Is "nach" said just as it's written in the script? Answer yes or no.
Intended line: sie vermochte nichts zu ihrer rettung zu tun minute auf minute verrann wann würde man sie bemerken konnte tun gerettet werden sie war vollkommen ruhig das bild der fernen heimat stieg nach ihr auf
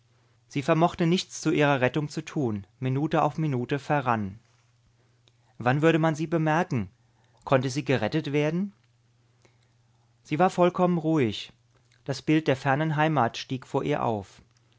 no